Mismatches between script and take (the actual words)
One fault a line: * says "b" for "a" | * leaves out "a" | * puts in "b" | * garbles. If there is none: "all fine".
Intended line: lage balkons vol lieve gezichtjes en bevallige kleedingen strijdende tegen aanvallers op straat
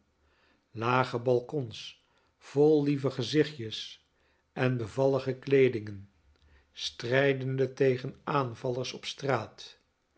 all fine